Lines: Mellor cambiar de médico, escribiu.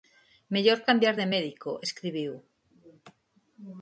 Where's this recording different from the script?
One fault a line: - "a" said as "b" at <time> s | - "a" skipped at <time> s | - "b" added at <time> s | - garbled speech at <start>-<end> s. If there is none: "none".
none